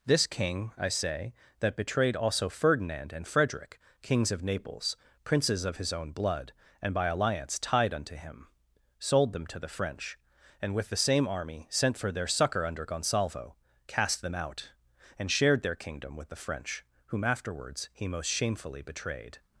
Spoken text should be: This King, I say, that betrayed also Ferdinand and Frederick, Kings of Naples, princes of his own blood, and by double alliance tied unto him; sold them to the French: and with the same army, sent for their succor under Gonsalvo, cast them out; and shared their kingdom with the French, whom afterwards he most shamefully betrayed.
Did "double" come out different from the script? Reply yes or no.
yes